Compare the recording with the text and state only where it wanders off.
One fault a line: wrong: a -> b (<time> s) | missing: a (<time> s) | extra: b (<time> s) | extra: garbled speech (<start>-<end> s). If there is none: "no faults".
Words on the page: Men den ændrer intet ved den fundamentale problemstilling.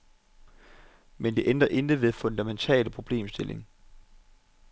wrong: den -> det (1.3 s)